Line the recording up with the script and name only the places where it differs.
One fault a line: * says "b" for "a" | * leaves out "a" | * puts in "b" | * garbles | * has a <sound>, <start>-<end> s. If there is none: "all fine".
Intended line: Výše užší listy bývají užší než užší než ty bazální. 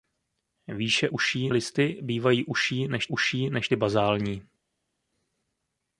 all fine